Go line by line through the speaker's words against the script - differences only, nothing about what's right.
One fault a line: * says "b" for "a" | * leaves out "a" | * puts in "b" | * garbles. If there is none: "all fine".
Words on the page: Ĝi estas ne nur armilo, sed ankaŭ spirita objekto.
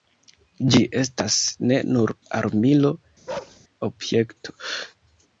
* leaves out "sed ankaŭ spirita"